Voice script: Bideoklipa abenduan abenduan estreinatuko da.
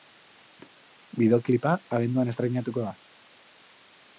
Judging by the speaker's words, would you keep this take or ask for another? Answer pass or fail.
fail